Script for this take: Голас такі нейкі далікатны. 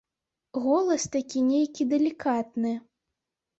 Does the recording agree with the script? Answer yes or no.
yes